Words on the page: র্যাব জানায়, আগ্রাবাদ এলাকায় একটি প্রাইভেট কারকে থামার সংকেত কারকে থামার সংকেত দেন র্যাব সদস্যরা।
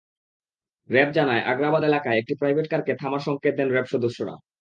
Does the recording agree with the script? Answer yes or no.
no